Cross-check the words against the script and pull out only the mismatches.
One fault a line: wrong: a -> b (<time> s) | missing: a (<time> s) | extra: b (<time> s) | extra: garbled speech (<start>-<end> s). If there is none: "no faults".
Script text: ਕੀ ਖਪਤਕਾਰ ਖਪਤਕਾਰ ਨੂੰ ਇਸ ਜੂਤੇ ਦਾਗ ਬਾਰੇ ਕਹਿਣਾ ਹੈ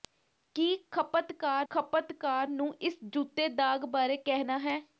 no faults